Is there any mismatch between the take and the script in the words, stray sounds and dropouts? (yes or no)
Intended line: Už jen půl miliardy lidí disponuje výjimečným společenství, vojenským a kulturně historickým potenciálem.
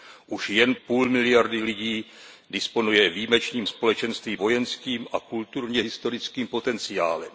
no